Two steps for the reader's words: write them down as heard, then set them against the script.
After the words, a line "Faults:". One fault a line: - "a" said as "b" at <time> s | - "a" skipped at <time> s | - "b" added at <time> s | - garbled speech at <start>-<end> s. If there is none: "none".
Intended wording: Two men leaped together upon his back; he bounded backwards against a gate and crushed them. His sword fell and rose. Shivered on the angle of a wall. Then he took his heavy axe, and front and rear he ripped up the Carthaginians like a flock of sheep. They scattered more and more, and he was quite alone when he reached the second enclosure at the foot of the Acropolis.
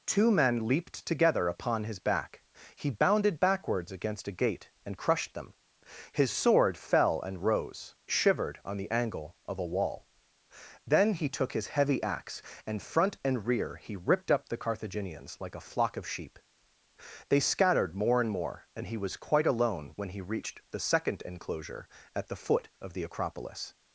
Two men leaped together upon his back; he bounded backwards against a gate and crushed them. His sword fell and rose. Shivered on the angle of a wall. Then he took his heavy axe, and front and rear he ripped up the Carthaginians like a flock of sheep. They scattered more and more, and he was quite alone when he reached the second enclosure at the foot of the Acropolis.
Faults:
none